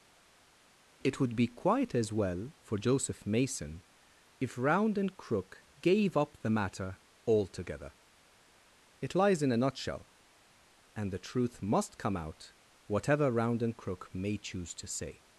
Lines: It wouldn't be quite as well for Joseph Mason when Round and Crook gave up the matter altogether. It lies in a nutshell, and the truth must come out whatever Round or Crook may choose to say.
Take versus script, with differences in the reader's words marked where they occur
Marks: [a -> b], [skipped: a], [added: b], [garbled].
It [wouldn't -> would] be quite as well for Joseph Mason [when -> if] Round and Crook gave up the matter altogether. It lies in a nutshell, and the truth must come out whatever Round [or -> and] Crook may choose to say.